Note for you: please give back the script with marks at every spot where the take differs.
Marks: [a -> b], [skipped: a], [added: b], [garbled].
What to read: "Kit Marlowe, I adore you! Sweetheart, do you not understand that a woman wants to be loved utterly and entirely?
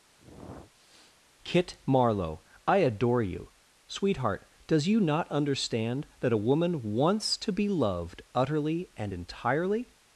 "Kit Marlowe, I adore you! Sweetheart, [do -> does] you not understand that a woman wants to be loved utterly and entirely?